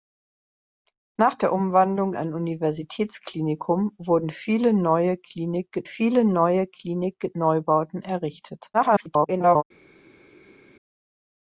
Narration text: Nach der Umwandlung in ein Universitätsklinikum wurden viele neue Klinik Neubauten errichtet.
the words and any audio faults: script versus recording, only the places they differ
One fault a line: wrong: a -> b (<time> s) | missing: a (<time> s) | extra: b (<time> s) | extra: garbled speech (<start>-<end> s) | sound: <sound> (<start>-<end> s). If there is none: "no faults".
missing: in (2.1 s)
extra: viele neue Klinik (5.8 s)
extra: garbled speech (8.7-9.6 s)